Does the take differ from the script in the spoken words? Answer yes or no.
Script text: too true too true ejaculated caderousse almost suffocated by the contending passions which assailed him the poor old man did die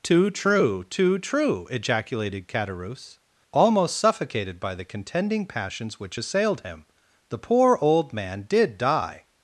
no